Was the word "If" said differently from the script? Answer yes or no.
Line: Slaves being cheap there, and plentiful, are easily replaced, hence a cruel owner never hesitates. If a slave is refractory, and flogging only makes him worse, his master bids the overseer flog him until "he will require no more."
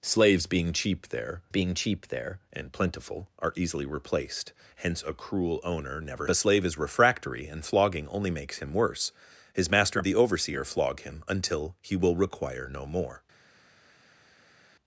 yes